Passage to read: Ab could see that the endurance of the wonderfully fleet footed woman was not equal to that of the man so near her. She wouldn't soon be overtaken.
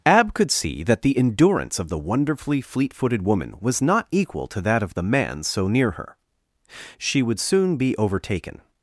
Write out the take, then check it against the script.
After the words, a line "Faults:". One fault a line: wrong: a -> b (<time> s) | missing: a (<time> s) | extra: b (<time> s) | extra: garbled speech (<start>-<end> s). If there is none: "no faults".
Ab could see that the endurance of the wonderfully fleet footed woman was not equal to that of the man so near her. She would soon be overtaken.
Faults:
wrong: wouldn't -> would (7.2 s)